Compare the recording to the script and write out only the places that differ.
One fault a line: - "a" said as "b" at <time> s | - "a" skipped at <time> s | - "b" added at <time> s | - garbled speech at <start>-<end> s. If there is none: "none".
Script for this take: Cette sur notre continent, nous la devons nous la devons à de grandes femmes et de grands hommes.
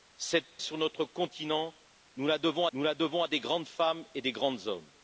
none